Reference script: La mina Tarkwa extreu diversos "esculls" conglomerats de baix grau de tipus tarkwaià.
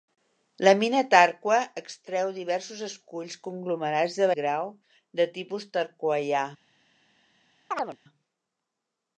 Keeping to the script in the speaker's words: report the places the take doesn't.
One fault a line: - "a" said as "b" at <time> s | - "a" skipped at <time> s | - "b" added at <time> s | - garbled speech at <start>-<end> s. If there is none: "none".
- "baix" skipped at 4.3 s